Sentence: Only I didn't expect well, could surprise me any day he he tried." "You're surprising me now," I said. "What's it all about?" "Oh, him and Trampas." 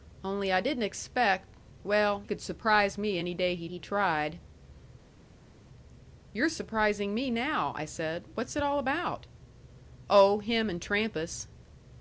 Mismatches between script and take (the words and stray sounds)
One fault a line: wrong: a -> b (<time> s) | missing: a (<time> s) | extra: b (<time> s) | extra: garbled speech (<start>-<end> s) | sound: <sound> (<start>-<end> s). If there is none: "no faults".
no faults